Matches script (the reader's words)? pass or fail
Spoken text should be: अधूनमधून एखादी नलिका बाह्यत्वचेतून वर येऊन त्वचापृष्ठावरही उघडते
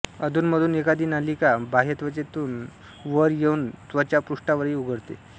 pass